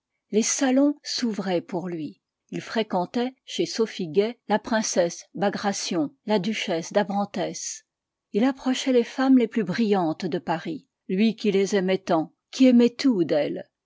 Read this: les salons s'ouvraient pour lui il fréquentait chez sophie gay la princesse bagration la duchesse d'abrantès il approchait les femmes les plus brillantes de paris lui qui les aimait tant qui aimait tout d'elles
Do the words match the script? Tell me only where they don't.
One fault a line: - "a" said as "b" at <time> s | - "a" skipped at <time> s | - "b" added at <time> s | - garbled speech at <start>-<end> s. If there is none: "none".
none